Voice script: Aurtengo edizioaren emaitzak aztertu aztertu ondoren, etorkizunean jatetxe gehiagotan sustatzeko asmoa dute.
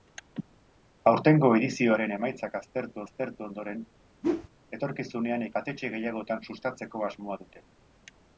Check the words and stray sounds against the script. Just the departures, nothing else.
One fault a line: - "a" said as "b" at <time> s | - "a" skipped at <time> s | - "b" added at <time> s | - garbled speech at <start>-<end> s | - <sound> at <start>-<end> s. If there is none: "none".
- whoosh at 4.2-4.5 s